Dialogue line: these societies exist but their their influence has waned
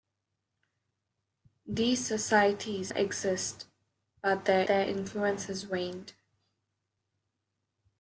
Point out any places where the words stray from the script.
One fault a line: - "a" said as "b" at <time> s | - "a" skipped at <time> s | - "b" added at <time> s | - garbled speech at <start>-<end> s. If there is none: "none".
none